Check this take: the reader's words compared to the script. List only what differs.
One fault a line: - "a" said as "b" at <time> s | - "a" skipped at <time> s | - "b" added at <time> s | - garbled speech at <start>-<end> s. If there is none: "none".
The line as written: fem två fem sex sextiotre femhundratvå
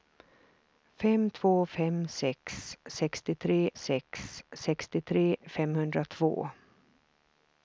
- "sex sextiotre" added at 3.7 s